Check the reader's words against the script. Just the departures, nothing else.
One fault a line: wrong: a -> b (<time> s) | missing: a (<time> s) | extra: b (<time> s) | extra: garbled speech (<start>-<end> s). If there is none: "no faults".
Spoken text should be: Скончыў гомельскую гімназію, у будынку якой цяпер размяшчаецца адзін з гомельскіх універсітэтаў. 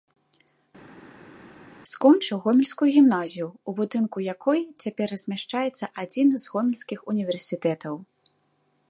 no faults